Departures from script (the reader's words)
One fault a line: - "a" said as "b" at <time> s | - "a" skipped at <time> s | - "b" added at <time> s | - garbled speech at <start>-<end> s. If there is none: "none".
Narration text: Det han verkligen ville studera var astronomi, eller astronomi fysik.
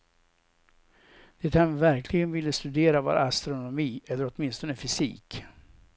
- "astronomi" said as "åtminstone" at 4.3 s